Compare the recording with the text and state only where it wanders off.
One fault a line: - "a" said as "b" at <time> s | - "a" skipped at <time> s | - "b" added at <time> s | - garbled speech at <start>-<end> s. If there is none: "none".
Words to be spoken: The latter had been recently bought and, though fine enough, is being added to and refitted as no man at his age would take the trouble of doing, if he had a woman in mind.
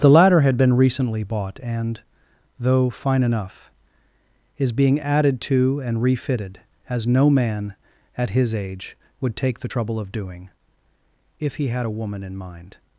none